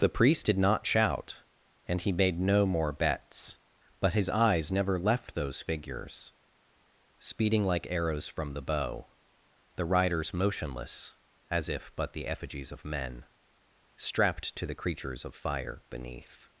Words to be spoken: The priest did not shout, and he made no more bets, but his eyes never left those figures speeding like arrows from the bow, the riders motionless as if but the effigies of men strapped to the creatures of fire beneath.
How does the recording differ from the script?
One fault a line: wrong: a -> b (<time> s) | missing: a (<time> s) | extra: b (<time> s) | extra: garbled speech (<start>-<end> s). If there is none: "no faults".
no faults